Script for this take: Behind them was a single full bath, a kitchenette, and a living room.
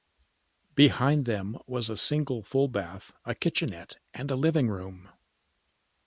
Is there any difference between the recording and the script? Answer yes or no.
no